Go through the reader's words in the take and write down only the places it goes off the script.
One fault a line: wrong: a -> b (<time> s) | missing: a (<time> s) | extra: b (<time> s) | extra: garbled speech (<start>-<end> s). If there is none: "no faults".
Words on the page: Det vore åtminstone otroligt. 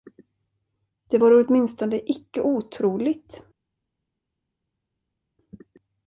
extra: icke (2.1 s)